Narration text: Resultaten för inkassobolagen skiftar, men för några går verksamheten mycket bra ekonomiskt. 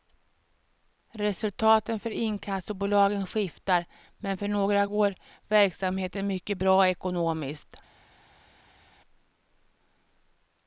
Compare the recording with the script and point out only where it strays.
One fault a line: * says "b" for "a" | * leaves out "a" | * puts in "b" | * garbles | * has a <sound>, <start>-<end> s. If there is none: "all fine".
all fine